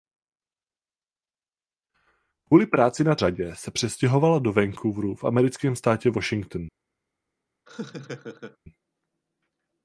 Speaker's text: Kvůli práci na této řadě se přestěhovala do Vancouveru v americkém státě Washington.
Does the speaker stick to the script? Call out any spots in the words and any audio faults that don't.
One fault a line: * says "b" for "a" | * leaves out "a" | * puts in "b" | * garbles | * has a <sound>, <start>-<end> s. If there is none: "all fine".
* leaves out "této"
* has a laugh, 7.7-8.6 s